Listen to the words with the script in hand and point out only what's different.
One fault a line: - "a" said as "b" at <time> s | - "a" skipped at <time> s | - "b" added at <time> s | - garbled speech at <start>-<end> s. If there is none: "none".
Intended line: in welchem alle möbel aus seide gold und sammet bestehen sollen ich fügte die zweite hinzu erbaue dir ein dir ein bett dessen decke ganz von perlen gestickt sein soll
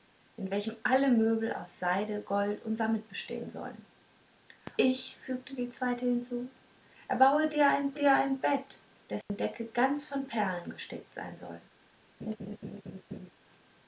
none